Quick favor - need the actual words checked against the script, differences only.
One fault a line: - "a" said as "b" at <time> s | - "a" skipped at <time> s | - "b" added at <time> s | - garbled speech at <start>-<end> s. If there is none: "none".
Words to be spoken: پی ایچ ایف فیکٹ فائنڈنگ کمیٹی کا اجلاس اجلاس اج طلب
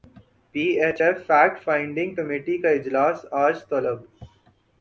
- "اجلاس" skipped at 3.2 s